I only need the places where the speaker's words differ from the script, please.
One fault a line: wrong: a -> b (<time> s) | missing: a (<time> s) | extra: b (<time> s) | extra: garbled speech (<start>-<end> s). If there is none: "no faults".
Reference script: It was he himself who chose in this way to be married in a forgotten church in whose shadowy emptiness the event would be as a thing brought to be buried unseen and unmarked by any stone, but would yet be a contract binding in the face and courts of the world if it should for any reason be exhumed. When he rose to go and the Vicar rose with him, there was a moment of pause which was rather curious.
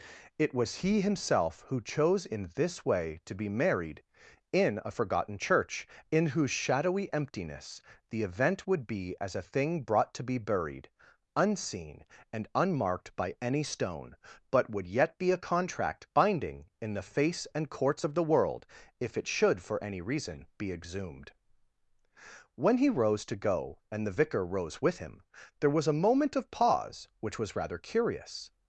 no faults